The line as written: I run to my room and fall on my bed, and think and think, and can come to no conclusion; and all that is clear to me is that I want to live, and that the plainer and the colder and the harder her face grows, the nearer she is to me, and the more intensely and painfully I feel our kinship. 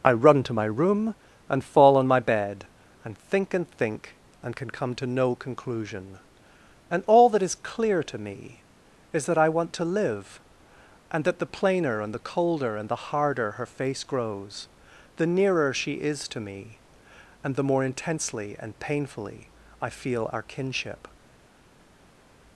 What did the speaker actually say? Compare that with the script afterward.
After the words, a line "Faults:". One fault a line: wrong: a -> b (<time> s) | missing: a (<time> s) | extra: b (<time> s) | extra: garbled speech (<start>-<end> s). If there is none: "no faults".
I run to my room and fall on my bed, and think and think, and can come to no conclusion; and all that is clear to me is that I want to live, and that the plainer and the colder and the harder her face grows, the nearer she is to me, and the more intensely and painfully I feel our kinship.
Faults:
no faults